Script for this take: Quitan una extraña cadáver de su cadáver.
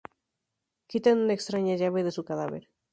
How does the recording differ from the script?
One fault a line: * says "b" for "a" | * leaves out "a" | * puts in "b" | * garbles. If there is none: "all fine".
* says "llave" for "cadáver"